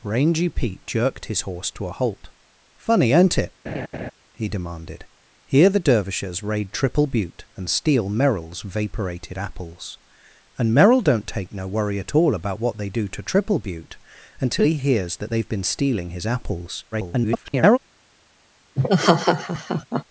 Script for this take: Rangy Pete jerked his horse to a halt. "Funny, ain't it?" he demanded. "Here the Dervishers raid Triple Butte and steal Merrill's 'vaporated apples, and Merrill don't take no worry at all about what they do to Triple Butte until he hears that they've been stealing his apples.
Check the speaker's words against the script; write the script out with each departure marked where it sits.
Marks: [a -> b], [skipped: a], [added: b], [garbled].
Rangy Pete jerked his horse to a halt. "Funny, ain't it?" he demanded. "Here the Dervishers raid Triple Butte and steal Merrill's 'vaporated apples, and Merrill don't take no worry at all about what they do to Triple Butte until he hears that they've been stealing his apples. [garbled]